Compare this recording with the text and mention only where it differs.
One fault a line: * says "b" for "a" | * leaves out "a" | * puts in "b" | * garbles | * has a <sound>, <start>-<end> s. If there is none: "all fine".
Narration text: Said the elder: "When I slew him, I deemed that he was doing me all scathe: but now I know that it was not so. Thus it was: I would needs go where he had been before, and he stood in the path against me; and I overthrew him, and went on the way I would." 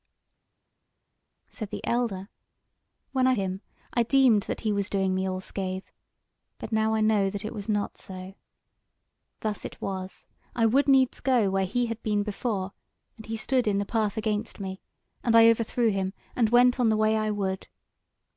* leaves out "slew"